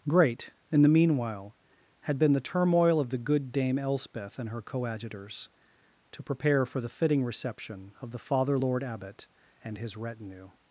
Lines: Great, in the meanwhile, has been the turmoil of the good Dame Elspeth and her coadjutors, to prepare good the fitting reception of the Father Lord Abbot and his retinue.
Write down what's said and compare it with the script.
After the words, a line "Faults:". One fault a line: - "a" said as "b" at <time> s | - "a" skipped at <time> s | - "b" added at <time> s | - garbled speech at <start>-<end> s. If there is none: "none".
Great, in the meanwhile, had been the turmoil of the good Dame Elspeth and her coadjutors, to prepare for the fitting reception of the Father Lord Abbot and his retinue.
Faults:
- "has" said as "had" at 2.0 s
- "good" said as "for" at 6.7 s